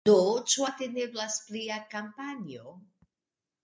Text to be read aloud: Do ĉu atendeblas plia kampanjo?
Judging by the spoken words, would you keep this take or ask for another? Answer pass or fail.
pass